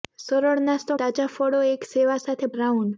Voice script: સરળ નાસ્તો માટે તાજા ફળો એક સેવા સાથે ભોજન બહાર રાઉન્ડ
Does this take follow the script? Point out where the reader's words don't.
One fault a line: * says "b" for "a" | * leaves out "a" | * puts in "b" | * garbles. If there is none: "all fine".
* leaves out "માટે"
* leaves out "ભોજન બહાર"